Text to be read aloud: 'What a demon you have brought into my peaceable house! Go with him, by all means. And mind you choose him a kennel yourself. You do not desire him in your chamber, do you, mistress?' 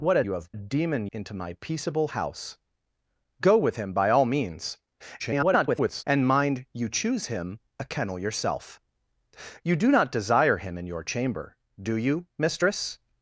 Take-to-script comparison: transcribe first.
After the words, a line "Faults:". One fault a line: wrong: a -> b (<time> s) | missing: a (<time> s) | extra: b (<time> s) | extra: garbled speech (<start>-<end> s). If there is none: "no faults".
'What a you have demon into my peaceable house! Go with him, by all means. [garbled] And mind you choose him a kennel yourself. You do not desire him in your chamber, do you, mistress?'
Faults:
missing: demon (0.2 s)
wrong: brought -> demon (0.5 s)
extra: garbled speech (5.2-6.0 s)